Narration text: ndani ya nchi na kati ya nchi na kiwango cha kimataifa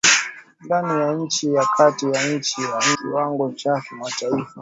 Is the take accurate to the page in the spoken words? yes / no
yes